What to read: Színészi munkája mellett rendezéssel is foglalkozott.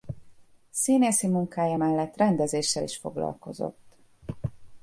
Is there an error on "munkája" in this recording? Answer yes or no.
no